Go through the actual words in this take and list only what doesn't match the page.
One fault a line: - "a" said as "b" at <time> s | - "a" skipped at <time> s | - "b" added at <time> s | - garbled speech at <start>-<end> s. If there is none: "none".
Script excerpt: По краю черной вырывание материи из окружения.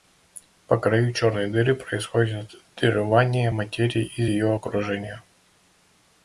- "дыры происходит" added at 1.5 s
- "ее" added at 4.3 s